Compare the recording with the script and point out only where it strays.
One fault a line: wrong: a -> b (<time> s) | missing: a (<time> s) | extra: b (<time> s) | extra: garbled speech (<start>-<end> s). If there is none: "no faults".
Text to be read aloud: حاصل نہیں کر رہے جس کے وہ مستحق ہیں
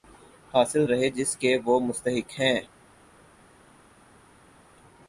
missing: نہیں کر (0.8 s)